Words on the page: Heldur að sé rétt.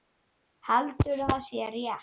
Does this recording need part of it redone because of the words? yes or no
no